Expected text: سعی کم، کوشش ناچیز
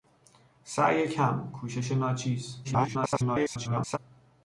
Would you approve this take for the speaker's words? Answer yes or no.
no